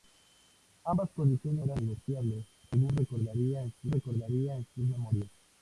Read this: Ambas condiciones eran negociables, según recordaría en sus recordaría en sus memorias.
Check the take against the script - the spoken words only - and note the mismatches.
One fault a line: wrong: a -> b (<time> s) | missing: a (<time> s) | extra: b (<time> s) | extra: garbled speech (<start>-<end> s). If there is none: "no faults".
no faults